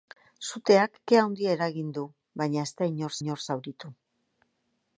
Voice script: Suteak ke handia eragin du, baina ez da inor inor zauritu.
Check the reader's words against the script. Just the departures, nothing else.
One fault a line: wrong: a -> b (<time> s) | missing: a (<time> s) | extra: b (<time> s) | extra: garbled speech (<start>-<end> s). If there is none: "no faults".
no faults